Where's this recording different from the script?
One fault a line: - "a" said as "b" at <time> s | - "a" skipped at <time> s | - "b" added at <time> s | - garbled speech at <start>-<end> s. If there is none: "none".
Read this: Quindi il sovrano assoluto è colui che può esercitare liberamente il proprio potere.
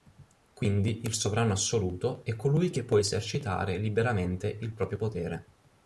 none